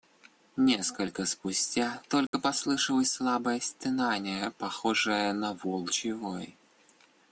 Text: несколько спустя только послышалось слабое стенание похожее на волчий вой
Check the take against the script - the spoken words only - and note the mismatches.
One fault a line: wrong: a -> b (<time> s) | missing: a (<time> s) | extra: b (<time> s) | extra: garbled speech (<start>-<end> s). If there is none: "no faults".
no faults